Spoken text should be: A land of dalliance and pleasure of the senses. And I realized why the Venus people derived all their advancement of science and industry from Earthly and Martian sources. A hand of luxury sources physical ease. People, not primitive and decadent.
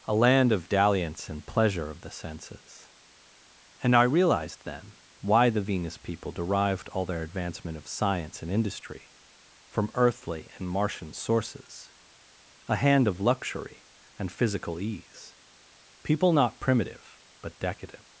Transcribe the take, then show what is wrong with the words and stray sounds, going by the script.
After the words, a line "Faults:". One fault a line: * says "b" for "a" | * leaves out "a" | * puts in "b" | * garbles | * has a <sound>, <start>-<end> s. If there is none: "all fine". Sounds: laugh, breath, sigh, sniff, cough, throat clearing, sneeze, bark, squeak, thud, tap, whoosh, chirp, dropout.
A land of dalliance and pleasure of the senses. And I realized then why the Venus people derived all their advancement of science and industry from Earthly and Martian sources. A hand of luxury and physical ease. People, not primitive but decadent.
Faults:
* puts in "then"
* says "and" for "sources"
* says "but" for "and"